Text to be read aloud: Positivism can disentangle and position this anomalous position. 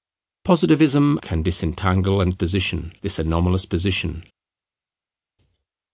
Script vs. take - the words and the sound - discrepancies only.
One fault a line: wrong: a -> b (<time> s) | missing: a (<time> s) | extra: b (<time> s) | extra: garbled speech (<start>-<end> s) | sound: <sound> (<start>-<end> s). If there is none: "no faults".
no faults